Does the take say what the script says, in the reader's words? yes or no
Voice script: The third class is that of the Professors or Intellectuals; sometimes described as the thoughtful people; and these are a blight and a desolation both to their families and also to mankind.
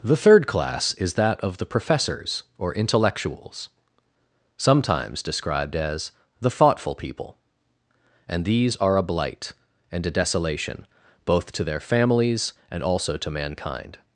yes